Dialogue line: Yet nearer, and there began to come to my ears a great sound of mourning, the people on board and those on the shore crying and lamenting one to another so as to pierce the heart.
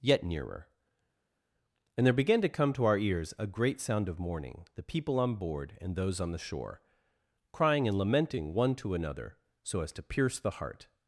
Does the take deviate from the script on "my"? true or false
true